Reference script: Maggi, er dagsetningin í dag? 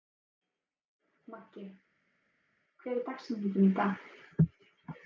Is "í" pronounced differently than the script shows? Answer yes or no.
no